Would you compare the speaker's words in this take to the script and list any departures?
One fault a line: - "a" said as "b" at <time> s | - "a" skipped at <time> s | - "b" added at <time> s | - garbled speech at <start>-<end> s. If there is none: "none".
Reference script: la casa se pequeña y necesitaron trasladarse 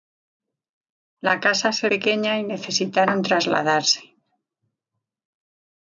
none